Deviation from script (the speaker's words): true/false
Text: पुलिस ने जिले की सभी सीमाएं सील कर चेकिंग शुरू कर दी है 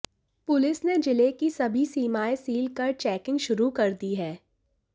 false